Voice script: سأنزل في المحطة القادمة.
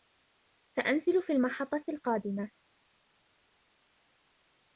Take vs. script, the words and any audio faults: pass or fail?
pass